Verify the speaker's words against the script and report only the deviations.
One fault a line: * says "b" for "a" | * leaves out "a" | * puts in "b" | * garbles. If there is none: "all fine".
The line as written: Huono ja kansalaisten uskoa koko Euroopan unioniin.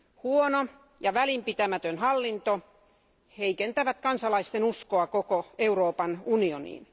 * puts in "välinpitämätön hallinto heikentävät"